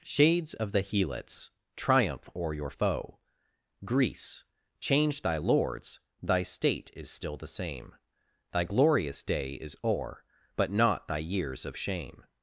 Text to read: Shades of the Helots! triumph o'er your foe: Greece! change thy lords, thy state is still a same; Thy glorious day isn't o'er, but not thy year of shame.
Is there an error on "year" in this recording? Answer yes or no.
yes